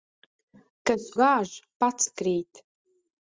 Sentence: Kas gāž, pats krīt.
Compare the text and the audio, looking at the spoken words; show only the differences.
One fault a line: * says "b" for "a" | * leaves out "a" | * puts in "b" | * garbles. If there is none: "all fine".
all fine